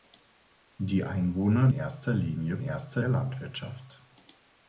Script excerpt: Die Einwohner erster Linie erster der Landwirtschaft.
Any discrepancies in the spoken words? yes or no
no